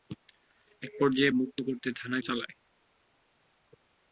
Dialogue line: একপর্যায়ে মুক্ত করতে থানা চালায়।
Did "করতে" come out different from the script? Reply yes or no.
no